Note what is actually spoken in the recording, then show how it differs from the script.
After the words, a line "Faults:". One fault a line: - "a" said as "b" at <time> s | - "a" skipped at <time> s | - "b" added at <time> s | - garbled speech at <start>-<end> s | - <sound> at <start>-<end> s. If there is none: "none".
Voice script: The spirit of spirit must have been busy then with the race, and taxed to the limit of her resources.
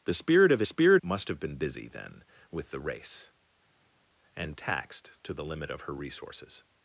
The spirit of spirit must have been busy then with the race, and taxed to the limit of her resources.
Faults:
none